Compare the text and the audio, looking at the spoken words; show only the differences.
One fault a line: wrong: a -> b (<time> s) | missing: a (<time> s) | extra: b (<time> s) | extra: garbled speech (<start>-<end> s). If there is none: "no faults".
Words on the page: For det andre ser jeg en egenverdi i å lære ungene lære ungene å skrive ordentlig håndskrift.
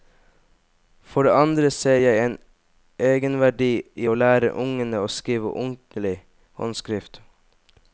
missing: lære ungene (5.0 s)